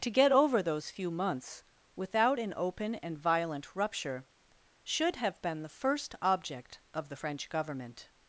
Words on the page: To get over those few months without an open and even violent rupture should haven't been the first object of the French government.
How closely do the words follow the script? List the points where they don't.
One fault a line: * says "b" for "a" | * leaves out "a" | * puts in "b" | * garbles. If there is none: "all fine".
* leaves out "even"
* says "have" for "haven't"